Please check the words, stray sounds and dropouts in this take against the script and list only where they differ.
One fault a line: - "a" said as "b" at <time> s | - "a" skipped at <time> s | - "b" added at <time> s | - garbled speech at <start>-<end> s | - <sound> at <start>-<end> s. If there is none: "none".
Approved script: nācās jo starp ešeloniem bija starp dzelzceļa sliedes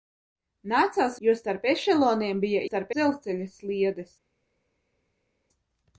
none